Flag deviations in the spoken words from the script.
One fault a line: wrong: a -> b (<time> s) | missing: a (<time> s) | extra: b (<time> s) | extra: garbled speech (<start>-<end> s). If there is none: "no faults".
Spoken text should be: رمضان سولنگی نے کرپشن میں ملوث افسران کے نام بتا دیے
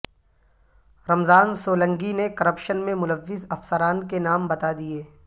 no faults